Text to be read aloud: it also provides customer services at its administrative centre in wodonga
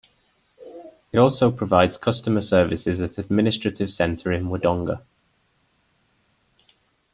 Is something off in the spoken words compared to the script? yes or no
yes